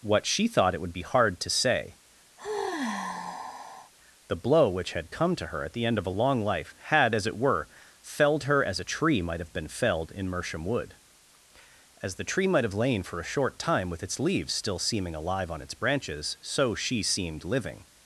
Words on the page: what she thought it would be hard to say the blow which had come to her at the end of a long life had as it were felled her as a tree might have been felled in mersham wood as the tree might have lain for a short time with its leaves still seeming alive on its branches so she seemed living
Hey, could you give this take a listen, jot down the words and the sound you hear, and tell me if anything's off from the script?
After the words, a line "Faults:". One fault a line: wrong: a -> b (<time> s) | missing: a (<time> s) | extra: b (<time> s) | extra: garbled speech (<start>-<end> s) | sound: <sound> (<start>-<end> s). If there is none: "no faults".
what she thought it would be hard to say the blow which had come to her at the end of a long life had as it were felled her as a tree might have been felled in mersham wood as the tree might have lain for a short time with its leaves still seeming alive on its branches so she seemed living
Faults:
sound: sigh (2.4-3.9 s)